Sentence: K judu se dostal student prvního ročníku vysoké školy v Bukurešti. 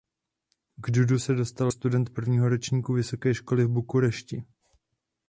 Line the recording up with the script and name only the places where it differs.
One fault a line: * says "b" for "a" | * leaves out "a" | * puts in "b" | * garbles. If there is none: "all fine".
all fine